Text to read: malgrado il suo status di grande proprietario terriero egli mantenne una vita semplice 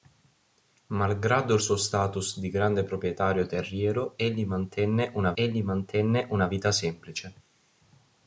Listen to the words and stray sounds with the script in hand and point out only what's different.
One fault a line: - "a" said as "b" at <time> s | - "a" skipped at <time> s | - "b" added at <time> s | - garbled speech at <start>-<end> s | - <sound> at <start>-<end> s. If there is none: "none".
- "egli mantenne una" added at 5.3 s